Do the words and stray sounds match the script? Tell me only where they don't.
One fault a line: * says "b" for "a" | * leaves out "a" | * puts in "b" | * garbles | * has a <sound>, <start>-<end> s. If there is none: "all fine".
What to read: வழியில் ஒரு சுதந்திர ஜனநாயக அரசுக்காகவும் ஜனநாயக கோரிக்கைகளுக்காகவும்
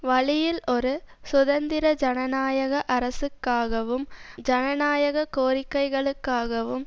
all fine